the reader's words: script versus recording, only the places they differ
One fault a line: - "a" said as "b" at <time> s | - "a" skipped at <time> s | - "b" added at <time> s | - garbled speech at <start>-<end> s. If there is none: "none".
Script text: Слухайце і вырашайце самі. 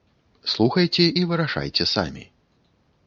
none